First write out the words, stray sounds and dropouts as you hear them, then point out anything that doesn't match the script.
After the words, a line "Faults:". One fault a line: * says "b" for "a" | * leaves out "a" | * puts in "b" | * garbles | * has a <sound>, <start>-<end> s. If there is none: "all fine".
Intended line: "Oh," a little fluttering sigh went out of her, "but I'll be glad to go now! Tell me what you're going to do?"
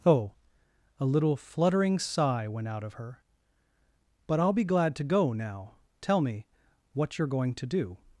"Oh," a little fluttering sigh went out of her, "but I'll be glad to go now! Tell me what you're going to do?"
Faults:
all fine